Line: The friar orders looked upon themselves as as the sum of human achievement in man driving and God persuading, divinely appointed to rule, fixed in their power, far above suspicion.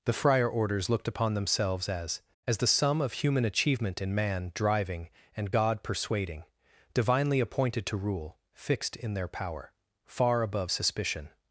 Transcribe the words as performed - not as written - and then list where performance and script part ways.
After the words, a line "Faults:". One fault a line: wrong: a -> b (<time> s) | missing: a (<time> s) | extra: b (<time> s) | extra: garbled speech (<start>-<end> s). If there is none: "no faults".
The friar orders looked upon themselves as as the sum of human achievement in man driving and God persuading, divinely appointed to rule, fixed in their power, far above suspicion.
Faults:
no faults